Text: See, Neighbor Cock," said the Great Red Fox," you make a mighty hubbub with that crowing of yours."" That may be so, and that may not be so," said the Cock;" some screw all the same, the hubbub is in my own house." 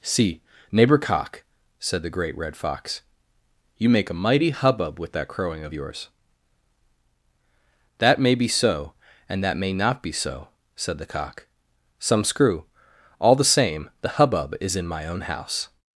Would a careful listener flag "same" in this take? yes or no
no